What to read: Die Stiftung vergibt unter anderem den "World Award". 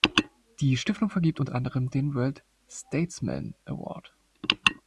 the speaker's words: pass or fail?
fail